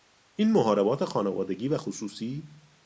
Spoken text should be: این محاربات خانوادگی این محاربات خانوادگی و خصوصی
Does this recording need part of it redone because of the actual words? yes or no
yes